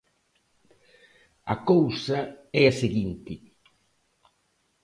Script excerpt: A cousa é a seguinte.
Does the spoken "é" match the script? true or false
true